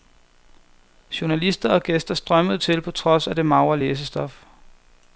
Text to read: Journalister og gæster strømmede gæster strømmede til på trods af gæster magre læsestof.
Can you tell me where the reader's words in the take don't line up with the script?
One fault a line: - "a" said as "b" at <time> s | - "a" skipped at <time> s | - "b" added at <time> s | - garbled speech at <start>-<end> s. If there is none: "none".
- "gæster strømmede" skipped at 2.6 s
- "gæster" said as "det" at 3.4 s